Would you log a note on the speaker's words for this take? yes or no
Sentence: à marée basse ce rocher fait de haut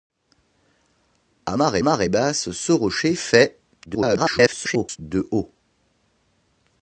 yes